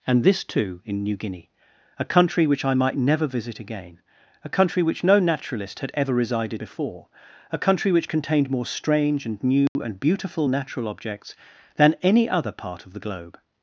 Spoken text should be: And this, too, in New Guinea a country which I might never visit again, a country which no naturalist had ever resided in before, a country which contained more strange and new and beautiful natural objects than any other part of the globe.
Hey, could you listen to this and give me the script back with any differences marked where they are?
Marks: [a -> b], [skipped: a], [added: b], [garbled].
And this, too, in New Guinea a country which I might never visit again, a country which no naturalist had ever resided [skipped: in] before, a country which contained more strange and new and beautiful natural objects than any other part of the globe.